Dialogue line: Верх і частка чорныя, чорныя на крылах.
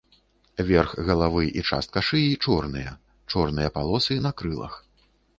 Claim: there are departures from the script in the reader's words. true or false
true